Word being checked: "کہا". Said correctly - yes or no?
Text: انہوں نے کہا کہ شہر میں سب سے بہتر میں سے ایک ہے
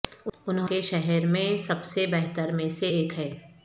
no